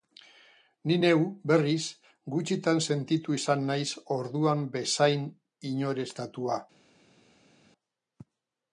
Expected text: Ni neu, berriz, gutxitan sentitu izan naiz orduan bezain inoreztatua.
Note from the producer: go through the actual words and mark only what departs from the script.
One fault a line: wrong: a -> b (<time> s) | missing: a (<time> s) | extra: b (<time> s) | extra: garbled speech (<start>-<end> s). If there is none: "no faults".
no faults